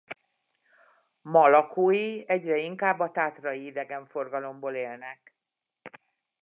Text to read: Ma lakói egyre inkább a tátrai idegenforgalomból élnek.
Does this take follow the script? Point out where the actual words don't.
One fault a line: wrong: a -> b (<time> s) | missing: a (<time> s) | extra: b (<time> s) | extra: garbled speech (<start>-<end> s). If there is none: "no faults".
no faults